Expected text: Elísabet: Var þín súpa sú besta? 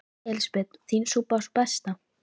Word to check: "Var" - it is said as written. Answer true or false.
false